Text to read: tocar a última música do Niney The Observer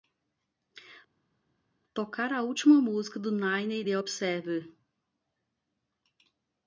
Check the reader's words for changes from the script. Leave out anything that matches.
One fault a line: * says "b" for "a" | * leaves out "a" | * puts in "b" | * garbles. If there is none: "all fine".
all fine